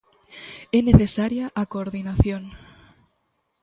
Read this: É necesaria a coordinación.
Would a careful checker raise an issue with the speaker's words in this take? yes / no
no